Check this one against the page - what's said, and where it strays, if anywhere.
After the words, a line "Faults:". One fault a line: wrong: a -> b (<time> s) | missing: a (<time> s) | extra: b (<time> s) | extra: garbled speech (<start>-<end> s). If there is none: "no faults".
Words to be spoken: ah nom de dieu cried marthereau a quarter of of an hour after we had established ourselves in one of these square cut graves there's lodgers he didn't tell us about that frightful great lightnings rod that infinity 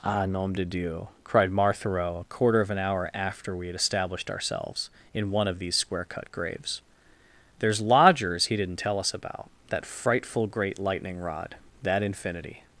ah nom de dieu cried marthereau a quarter of an hour after we had established ourselves in one of these square cut graves there's lodgers he didn't tell us about that frightful great lightning rod that infinity
Faults:
missing: of (2.7 s)
wrong: lightnings -> lightning (10.8 s)